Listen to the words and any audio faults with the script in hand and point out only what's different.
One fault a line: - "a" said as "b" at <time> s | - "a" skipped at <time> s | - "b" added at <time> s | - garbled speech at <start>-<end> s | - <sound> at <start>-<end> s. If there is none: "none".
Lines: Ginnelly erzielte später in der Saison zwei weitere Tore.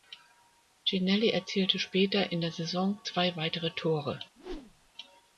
- whoosh at 4.4-4.9 s